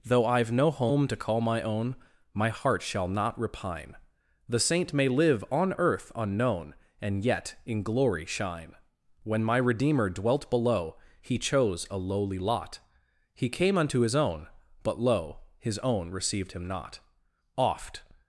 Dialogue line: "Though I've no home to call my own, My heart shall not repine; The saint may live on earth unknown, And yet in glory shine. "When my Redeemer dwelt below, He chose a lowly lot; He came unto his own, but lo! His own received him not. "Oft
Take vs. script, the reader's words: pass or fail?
pass